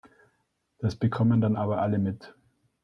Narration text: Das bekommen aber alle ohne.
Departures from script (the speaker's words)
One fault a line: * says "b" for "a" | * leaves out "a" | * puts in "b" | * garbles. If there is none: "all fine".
* puts in "dann"
* says "mit" for "ohne"